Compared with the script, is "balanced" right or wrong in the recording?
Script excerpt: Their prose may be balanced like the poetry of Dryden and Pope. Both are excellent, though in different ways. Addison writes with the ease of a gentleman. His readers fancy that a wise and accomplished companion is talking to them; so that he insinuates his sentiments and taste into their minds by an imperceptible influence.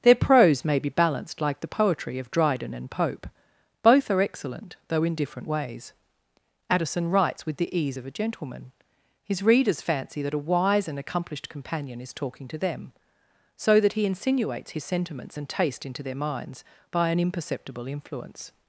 right